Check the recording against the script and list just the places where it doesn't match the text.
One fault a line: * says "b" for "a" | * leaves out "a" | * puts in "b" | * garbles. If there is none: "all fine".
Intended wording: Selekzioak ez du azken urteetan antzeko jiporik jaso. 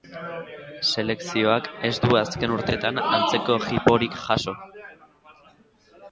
all fine